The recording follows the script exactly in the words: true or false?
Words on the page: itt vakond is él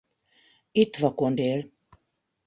false